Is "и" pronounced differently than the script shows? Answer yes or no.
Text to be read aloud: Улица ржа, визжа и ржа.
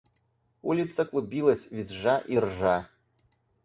no